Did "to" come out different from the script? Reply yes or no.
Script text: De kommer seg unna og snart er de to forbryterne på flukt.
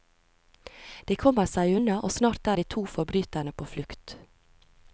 no